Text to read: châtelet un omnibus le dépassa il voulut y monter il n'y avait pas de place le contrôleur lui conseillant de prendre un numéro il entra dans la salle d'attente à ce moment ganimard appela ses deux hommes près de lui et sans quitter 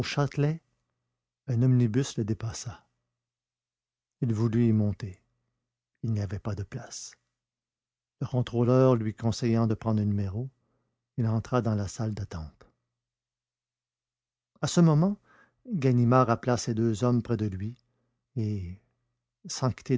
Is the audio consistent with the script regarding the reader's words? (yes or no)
yes